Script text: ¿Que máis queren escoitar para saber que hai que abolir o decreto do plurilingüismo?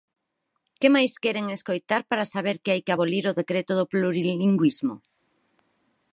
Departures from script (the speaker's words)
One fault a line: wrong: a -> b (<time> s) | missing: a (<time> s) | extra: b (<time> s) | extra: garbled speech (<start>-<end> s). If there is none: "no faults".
no faults